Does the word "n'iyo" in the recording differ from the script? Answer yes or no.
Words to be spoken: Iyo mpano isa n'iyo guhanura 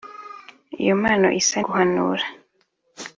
yes